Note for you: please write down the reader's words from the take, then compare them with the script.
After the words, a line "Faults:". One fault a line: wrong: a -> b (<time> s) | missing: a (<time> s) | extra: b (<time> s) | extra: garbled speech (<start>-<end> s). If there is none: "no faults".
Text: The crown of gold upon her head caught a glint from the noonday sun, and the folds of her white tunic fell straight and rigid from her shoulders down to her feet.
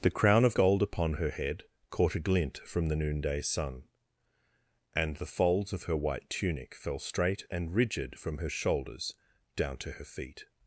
The crown of gold upon her head caught a glint from the noonday sun, and the folds of her white tunic fell straight and rigid from her shoulders down to her feet.
Faults:
no faults